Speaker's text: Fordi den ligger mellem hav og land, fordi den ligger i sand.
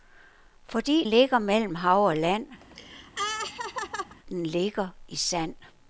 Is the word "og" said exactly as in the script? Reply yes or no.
yes